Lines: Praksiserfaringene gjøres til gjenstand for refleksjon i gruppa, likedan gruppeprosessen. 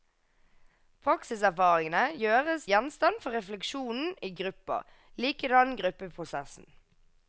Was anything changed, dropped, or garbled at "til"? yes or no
yes